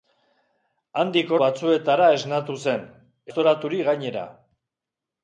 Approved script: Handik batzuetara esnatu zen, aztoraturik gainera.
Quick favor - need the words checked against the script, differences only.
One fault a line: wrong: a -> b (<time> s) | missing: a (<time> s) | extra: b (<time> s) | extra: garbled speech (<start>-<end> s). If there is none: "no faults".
no faults